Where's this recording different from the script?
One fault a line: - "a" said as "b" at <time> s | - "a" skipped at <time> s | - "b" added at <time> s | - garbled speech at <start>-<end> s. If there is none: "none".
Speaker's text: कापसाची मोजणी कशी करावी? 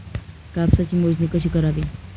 none